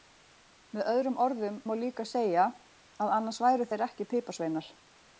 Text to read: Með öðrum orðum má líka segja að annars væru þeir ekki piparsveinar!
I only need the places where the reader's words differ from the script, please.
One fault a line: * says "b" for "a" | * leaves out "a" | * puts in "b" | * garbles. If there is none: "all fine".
all fine